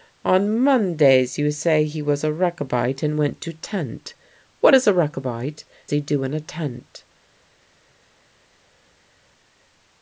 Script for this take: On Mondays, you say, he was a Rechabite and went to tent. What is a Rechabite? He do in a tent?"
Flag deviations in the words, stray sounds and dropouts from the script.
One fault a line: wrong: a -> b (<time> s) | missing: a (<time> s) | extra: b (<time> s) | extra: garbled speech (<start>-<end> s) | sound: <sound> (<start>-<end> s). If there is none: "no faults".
no faults